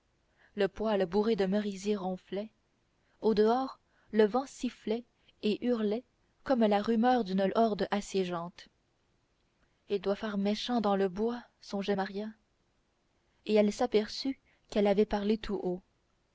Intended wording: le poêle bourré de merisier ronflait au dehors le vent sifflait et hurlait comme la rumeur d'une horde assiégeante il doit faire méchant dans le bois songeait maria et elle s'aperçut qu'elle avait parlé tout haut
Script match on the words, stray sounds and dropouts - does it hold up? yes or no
yes